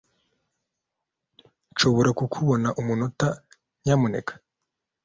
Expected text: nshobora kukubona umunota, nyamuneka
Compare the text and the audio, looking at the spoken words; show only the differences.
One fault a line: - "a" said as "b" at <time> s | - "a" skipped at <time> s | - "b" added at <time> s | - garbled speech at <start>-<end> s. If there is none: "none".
none